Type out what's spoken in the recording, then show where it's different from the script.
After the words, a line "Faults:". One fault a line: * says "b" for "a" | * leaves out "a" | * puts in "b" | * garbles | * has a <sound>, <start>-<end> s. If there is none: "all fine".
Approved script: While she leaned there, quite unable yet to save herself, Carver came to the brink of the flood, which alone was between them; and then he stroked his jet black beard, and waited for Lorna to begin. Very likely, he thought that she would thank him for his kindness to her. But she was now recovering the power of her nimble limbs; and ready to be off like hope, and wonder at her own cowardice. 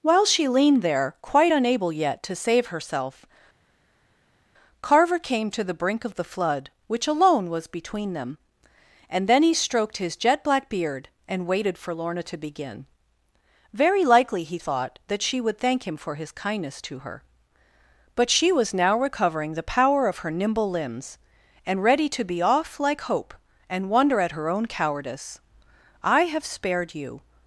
While she leaned there, quite unable yet to save herself, Carver came to the brink of the flood, which alone was between them; and then he stroked his jet black beard, and waited for Lorna to begin. Very likely, he thought that she would thank him for his kindness to her. But she was now recovering the power of her nimble limbs; and ready to be off like hope, and wonder at her own cowardice. 'I have spared you
Faults:
* puts in "I have spared you"